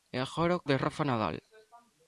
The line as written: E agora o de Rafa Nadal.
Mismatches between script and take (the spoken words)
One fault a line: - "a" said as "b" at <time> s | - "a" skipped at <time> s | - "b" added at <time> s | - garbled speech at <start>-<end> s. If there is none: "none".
none